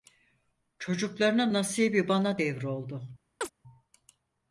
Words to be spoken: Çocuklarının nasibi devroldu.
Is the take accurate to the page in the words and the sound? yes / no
no